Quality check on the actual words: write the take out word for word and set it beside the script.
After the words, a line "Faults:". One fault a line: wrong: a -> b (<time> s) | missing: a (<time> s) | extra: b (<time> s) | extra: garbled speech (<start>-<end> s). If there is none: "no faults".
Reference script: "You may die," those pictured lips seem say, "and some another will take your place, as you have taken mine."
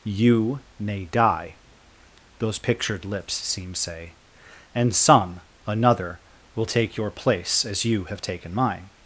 "You may die," those pictured lips seem say, "and some another will take your place, as you have taken mine."
Faults:
no faults